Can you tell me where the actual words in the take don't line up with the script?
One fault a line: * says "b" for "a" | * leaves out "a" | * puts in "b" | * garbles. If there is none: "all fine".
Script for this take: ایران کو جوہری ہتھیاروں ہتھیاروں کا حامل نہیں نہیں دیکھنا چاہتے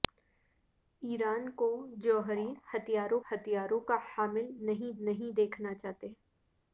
all fine